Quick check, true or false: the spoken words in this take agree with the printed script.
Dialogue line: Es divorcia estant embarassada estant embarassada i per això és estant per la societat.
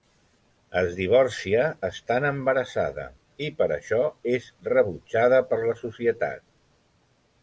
false